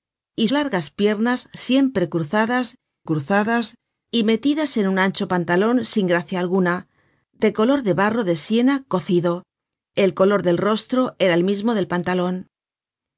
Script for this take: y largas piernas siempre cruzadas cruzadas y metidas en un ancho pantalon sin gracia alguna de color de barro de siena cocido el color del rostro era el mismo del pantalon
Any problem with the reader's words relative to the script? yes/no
no